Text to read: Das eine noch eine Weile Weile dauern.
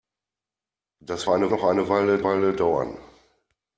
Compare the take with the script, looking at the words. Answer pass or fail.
pass